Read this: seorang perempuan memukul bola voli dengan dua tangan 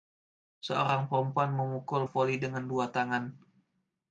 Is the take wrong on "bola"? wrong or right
wrong